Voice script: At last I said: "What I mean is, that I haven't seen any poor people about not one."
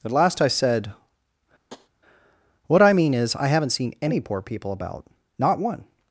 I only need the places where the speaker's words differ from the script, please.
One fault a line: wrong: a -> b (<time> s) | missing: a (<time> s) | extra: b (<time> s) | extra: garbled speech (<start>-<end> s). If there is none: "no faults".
missing: that (3.3 s)